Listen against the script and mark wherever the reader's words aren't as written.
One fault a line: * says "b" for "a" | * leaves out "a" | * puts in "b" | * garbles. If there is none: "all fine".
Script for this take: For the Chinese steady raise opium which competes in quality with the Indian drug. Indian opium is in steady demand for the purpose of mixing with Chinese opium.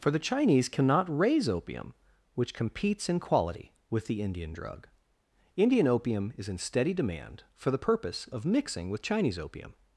* says "cannot" for "steady"